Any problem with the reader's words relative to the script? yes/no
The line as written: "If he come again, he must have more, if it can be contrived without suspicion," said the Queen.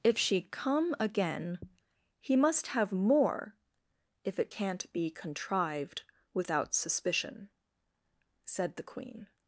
yes